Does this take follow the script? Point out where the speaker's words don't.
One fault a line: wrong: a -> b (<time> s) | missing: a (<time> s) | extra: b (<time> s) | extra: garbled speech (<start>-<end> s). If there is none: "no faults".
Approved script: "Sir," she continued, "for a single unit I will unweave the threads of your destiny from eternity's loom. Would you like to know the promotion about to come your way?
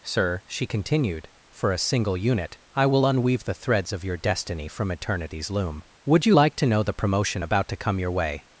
no faults